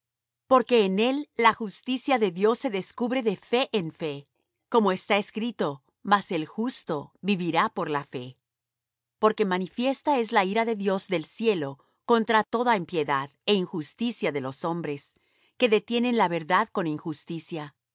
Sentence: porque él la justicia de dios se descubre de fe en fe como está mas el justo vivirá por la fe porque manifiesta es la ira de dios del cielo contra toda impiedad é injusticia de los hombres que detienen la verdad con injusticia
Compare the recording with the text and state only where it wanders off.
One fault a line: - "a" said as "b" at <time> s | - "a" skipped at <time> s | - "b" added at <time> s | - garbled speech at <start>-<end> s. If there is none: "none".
- "en" added at 0.8 s
- "escrito" added at 5.2 s